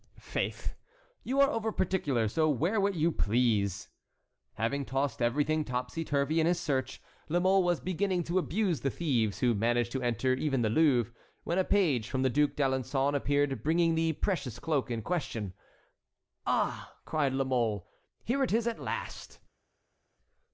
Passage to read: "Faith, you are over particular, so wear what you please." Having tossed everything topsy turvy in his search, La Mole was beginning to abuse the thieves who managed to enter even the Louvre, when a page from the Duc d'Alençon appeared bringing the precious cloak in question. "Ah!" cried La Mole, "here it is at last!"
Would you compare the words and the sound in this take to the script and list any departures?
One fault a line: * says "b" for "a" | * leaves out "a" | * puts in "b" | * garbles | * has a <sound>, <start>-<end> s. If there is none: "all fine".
all fine